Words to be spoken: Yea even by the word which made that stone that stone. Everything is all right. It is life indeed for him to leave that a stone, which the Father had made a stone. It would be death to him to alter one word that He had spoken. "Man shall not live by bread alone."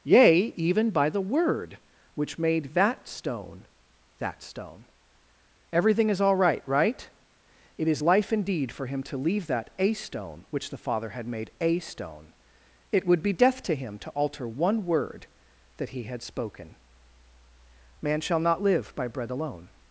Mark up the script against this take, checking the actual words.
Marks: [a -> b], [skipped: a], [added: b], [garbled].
Yea even by the word which made that stone that stone. Everything is all right. [added: right] It is life indeed for him to leave that a stone, which the Father had made a stone. It would be death to him to alter one word that He had spoken. "Man shall not live by bread alone."